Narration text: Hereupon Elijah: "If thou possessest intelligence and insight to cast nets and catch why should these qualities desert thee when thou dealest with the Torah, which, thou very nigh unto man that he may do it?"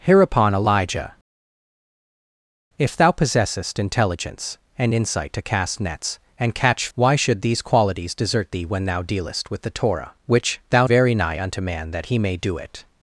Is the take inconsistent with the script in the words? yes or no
no